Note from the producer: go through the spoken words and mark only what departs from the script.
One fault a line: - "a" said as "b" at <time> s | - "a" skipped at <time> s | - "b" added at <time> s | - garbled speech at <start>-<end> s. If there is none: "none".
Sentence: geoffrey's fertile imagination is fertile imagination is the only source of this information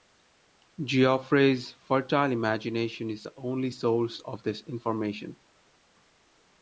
- "fertile imagination is" skipped at 3.2 s